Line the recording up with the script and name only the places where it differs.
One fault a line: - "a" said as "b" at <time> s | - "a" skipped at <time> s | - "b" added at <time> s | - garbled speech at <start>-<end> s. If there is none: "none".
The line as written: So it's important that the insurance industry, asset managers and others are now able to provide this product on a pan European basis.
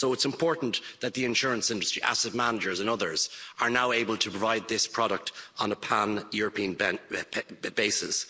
none